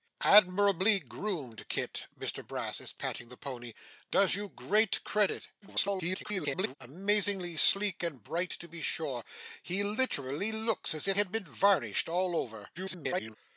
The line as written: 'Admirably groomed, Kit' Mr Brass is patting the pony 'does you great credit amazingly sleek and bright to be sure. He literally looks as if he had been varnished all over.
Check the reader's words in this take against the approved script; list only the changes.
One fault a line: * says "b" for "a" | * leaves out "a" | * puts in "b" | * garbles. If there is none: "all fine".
* garbles
* leaves out "he"
* garbles